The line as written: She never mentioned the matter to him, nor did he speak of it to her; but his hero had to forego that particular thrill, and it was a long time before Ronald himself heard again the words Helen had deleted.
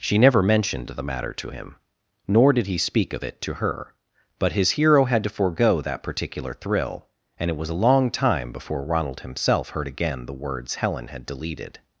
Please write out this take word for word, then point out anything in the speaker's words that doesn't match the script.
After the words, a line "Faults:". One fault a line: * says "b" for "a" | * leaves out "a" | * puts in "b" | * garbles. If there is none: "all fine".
She never mentioned the matter to him, nor did he speak of it to her; but his hero had to forego that particular thrill, and it was a long time before Ronald himself heard again the words Helen had deleted.
Faults:
all fine